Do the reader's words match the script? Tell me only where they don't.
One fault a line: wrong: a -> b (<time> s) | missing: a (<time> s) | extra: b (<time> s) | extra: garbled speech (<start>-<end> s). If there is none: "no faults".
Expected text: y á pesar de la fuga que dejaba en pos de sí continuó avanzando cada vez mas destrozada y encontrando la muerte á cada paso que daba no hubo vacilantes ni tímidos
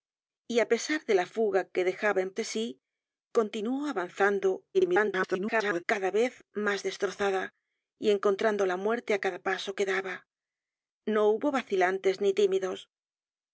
missing: pos (2.3 s)
extra: garbled speech (4.7-5.8 s)